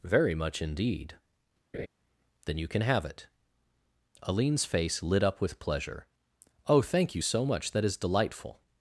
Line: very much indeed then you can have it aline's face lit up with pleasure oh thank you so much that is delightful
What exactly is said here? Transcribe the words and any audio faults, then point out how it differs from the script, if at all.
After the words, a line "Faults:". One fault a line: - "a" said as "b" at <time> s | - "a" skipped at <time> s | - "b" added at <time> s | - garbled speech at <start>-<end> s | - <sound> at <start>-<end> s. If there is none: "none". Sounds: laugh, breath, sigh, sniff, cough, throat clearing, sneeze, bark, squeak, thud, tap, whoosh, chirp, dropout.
very much indeed then you can have it aline's face lit up with pleasure oh thank you so much that is delightful
Faults:
- laugh at 1.7-1.9 s